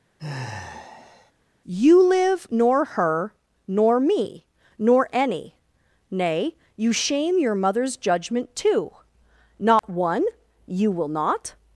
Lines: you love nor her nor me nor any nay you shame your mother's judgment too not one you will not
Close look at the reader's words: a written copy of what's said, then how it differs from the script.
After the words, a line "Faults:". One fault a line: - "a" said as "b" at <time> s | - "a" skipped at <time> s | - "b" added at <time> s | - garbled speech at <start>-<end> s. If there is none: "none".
you live nor her nor me nor any nay you shame your mother's judgment too not one you will not
Faults:
- "love" said as "live" at 2.0 s